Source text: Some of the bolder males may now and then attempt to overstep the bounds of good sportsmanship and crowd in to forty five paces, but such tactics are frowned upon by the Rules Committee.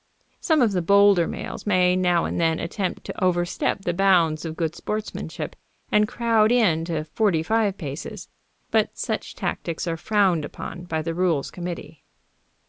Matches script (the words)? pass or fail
pass